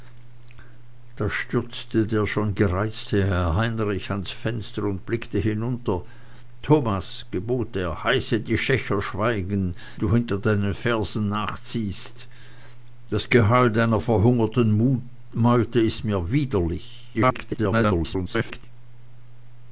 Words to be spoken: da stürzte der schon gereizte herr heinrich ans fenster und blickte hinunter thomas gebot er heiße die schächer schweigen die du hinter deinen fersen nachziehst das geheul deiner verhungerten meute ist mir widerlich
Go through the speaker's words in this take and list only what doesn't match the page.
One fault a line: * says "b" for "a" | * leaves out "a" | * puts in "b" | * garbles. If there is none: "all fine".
* leaves out "die"
* garbles